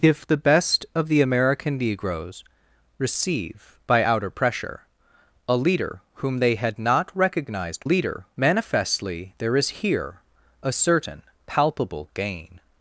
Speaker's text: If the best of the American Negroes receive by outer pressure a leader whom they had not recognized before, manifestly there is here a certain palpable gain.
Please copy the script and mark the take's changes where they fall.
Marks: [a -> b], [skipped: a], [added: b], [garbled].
If the best of the American Negroes receive by outer pressure a leader whom they had not recognized [before, -> leader] manifestly there is here a certain palpable gain.